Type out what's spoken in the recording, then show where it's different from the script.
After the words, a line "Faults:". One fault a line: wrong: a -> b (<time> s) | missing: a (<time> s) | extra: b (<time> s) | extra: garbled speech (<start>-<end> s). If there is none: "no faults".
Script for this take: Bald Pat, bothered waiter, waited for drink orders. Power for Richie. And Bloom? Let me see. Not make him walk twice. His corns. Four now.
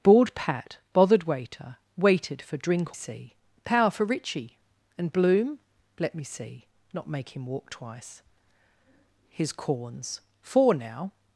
Bald Pat, bothered waiter, waited for drink see. Power for Richie. And Bloom? Let me see. Not make him walk twice. His corns. Four now.
Faults:
wrong: orders -> see (2.9 s)